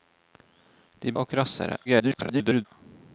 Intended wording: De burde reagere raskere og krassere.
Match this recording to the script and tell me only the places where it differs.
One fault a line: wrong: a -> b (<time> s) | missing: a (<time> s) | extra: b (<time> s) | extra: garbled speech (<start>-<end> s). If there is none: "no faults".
missing: burde reagere raskere (1.1 s)
extra: garbled speech (1.8-2.7 s)